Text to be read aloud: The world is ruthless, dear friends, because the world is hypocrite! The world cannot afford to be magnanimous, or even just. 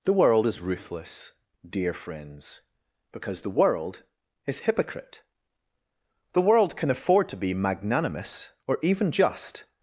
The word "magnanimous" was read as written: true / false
true